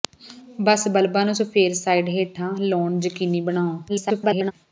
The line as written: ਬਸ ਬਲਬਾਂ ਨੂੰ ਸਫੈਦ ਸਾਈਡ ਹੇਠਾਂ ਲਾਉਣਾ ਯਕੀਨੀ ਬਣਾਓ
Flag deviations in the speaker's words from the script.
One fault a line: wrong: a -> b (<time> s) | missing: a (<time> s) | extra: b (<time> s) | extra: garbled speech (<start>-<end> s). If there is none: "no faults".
extra: garbled speech (3.9-4.5 s)